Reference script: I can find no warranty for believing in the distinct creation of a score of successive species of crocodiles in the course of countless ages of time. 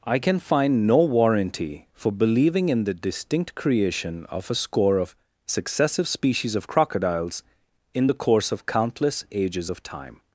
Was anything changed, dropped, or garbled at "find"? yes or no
no